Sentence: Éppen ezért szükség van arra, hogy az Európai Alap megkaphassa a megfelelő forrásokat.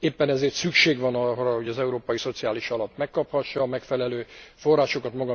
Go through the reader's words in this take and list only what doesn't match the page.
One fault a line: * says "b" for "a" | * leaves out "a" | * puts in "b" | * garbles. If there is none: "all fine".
* puts in "Szociális"